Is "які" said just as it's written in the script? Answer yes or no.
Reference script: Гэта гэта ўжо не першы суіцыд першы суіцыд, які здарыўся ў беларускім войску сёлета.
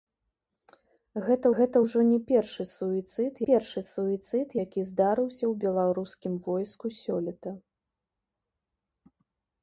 yes